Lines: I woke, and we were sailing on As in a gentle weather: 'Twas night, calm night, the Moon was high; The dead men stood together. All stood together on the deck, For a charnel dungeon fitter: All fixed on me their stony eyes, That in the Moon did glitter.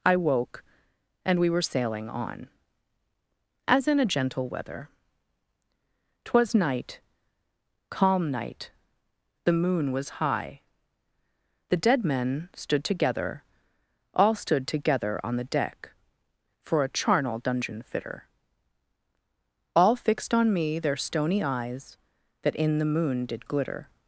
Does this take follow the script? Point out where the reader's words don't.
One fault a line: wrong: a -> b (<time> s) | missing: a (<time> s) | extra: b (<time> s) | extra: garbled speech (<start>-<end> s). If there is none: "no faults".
no faults